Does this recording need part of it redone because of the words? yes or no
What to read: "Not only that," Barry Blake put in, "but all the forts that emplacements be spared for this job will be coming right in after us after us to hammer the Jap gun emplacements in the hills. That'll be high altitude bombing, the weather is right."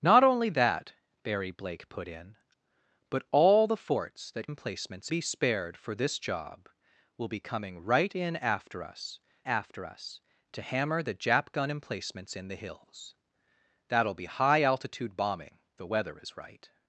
no